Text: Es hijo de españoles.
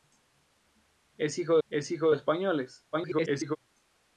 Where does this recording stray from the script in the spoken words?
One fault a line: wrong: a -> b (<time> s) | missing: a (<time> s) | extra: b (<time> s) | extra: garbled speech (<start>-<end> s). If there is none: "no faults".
extra: es hijo (1.7 s)
extra: garbled speech (2.9-3.6 s)